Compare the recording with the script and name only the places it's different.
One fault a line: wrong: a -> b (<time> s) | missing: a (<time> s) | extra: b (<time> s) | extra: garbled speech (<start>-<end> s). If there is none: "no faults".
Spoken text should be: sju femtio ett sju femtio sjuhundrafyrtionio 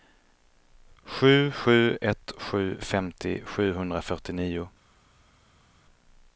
wrong: femtio -> sju (1.5 s)